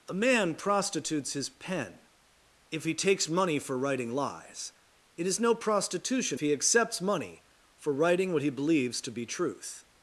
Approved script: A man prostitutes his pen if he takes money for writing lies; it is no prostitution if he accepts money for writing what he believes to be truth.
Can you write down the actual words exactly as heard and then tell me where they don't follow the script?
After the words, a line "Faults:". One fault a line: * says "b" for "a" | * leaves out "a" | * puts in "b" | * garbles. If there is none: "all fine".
A man prostitutes his pen if he takes money for writing lies; it is no prostitution he accepts money for writing what he believes to be truth.
Faults:
* leaves out "if"